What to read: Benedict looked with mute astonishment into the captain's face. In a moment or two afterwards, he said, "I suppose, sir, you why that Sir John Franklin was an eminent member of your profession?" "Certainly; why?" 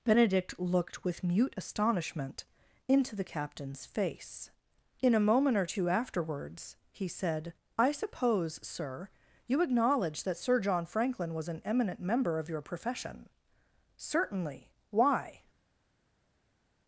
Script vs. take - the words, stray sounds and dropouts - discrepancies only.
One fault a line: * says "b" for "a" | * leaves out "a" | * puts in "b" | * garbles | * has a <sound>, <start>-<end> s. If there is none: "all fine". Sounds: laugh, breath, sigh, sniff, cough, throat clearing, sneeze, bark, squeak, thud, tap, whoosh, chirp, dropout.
* says "acknowledge" for "why"